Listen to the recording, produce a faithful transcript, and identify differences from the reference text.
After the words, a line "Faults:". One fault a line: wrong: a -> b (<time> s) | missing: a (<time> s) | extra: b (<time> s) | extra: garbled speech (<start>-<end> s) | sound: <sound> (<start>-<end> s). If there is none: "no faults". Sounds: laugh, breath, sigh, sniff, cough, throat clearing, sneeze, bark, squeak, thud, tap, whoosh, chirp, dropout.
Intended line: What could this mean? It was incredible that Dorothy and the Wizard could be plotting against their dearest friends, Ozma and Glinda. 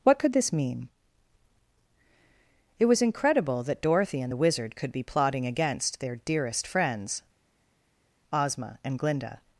What could this mean? It was incredible that Dorothy and the Wizard could be plotting against their dearest friends, Ozma and Glinda.
Faults:
no faults